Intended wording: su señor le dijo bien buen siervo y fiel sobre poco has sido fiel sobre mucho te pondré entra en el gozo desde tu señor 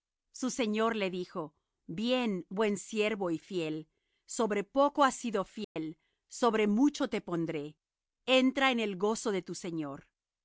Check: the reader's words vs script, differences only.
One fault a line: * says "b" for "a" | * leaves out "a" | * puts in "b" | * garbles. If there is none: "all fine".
* says "de" for "desde"